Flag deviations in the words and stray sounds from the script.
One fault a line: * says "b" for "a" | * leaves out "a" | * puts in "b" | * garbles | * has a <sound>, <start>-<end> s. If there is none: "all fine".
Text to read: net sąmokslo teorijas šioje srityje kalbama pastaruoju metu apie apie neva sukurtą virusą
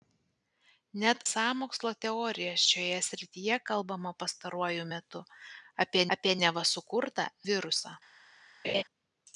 * has a laugh, 8.6-8.8 s